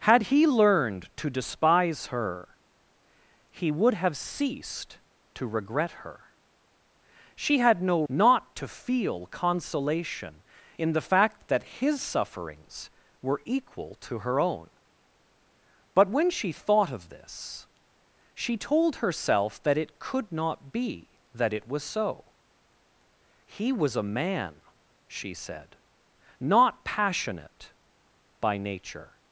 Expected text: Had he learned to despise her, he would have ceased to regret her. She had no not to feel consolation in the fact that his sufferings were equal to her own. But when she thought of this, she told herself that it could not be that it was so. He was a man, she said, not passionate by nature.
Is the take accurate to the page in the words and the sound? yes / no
yes